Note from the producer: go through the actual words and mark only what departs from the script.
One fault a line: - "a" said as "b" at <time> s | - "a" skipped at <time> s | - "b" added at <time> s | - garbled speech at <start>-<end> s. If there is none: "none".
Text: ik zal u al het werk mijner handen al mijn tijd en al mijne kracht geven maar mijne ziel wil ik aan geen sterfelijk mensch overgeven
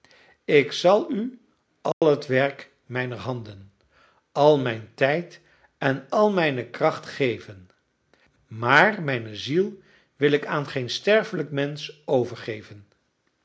none